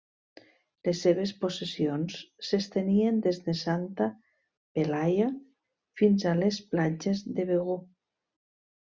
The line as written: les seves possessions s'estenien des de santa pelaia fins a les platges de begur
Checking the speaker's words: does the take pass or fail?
pass